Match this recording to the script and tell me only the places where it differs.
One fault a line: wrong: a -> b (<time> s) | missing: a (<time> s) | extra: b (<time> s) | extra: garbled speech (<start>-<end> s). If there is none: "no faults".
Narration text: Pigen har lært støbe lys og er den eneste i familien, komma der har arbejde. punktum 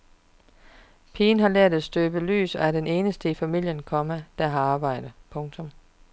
extra: at (1.7 s)